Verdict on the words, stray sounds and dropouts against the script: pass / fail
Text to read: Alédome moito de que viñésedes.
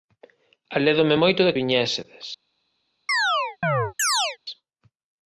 fail